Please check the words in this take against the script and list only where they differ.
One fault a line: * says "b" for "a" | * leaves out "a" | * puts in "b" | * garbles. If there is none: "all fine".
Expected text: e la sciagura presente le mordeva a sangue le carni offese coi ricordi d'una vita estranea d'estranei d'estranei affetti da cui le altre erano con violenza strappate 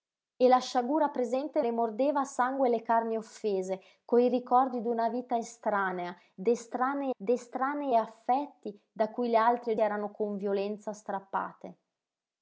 all fine